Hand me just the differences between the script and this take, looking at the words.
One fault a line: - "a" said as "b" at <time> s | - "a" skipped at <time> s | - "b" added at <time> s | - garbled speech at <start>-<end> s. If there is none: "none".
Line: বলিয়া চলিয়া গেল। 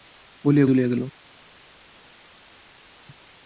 none